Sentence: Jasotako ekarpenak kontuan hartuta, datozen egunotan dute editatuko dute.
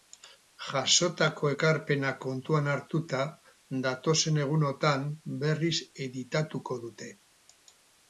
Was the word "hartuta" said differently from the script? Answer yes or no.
no